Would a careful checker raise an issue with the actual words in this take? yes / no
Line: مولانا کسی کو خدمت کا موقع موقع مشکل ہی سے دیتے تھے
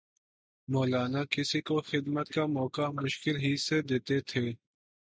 yes